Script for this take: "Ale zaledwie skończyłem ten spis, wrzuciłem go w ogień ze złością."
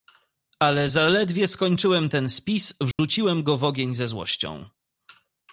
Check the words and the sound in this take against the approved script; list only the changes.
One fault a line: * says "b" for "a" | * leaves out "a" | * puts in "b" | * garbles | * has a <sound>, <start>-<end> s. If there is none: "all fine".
* has a dropout, 2.9-3.0 s